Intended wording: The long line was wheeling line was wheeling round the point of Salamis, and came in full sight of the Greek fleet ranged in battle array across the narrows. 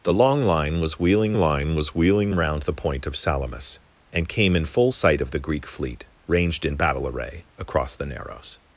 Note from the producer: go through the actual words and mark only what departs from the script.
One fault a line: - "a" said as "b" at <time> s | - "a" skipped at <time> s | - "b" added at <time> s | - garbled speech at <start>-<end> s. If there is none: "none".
none